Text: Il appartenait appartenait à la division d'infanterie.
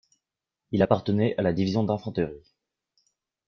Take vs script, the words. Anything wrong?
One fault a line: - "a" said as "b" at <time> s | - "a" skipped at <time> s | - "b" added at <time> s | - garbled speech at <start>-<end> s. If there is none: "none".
- "appartenait" skipped at 1.3 s